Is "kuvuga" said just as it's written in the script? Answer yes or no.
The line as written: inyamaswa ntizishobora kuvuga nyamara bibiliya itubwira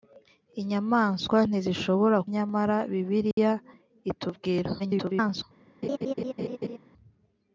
no